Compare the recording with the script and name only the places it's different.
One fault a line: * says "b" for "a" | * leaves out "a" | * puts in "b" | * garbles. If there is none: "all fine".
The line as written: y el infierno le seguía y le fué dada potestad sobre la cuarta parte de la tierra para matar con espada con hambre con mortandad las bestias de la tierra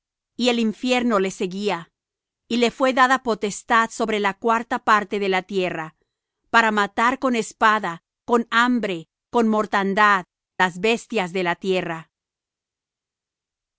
all fine